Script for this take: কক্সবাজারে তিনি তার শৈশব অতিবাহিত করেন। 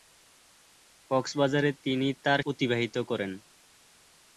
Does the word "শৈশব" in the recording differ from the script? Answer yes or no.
yes